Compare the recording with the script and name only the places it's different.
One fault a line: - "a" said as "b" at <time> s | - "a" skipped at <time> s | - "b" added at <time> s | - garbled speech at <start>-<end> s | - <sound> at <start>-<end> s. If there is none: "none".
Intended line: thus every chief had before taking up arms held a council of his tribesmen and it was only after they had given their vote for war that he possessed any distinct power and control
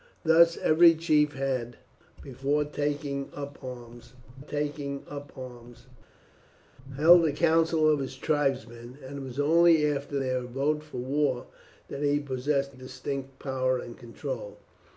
- "taking up arms" added at 4.4 s
- "they had given" skipped at 10.2 s
- "any" skipped at 12.8 s